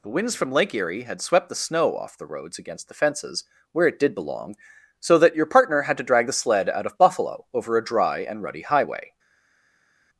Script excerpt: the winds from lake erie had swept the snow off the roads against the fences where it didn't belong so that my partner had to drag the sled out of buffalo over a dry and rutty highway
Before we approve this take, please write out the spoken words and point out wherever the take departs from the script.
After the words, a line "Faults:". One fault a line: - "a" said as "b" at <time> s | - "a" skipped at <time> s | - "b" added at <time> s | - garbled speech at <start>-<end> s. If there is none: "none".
the winds from lake erie had swept the snow off the roads against the fences where it did belong so that your partner had to drag the sled out of buffalo over a dry and rutty highway
Faults:
- "didn't" said as "did" at 4.0 s
- "my" said as "your" at 5.3 s